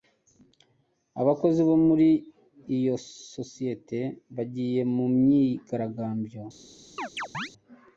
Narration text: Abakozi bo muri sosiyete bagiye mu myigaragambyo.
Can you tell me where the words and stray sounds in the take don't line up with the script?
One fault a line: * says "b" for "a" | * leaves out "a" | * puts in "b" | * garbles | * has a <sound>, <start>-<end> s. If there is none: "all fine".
* puts in "iyo"
* has a chirp, 7.0-7.5 s